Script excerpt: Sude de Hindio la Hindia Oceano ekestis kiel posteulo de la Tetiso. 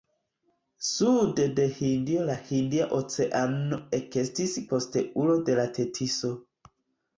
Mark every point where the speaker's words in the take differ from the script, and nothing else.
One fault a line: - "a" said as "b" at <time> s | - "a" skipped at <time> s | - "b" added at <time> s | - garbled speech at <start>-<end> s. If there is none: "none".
- "kiel" skipped at 4.6 s